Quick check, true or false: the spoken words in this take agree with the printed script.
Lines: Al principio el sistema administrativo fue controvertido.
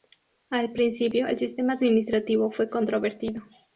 true